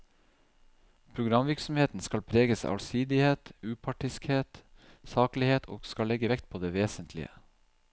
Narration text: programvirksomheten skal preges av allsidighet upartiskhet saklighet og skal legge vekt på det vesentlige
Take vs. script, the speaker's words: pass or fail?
pass